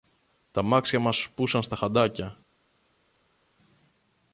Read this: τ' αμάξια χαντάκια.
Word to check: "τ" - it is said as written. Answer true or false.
true